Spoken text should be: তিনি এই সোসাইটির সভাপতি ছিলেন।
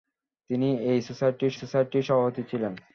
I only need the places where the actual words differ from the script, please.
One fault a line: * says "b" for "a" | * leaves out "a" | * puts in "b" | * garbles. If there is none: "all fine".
* puts in "সোসাইটির"